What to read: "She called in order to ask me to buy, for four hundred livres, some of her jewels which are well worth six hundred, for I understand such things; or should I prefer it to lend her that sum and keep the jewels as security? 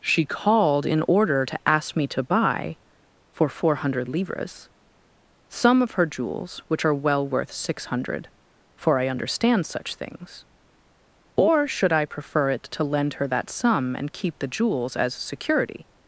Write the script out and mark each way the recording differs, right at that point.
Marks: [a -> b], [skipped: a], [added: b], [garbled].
"She called in order to ask me to buy, for four hundred livres, some of her jewels which are well worth six hundred, for I understand such things; or should I prefer it to lend her that sum and keep the jewels as security?